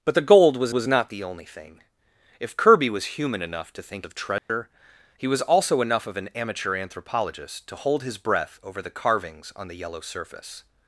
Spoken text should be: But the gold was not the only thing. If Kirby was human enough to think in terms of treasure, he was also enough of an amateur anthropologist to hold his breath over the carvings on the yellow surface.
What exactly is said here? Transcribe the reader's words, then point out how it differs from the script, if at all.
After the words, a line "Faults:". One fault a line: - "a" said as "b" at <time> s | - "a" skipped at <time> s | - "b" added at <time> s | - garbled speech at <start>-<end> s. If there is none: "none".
But the gold was was not the only thing. If Kirby was human enough to think of treasure, he was also enough of an amateur anthropologist to hold his breath over the carvings on the yellow surface.
Faults:
- "was" added at 0.7 s
- "in terms" skipped at 4.1 s